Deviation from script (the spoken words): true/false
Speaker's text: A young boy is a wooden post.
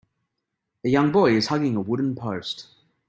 true